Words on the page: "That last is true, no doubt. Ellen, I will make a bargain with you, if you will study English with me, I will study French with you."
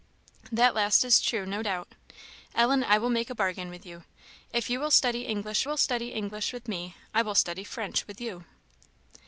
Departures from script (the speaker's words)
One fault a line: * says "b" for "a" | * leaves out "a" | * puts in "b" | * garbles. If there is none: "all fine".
* puts in "will study English"